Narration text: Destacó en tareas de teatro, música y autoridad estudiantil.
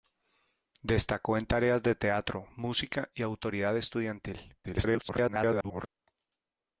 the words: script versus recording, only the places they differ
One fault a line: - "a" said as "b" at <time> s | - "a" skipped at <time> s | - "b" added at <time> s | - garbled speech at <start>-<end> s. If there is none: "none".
- garbled speech at 4.6-5.9 s